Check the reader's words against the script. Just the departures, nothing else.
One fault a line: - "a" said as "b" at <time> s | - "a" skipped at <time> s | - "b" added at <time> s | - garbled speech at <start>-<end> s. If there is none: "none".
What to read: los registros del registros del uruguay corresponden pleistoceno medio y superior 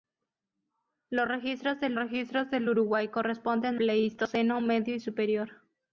none